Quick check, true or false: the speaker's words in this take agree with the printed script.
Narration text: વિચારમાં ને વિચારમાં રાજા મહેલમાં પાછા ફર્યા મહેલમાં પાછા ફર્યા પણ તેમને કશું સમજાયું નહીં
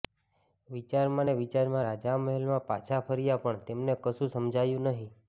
false